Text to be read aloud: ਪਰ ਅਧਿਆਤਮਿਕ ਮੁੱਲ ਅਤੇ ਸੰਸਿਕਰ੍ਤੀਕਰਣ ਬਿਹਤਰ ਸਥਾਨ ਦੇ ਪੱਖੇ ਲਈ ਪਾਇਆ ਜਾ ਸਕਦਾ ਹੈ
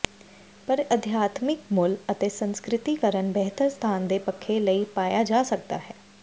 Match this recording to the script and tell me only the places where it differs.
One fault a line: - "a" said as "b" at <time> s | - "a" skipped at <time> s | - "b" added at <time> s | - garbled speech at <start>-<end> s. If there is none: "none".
none